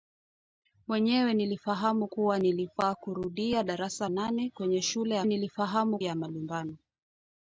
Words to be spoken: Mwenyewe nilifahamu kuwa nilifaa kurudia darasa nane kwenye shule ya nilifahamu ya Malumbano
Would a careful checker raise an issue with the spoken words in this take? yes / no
no